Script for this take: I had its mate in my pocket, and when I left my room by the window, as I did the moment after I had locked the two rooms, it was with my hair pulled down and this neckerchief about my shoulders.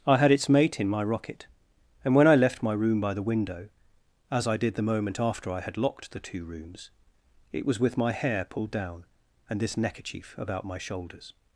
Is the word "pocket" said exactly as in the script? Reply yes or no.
no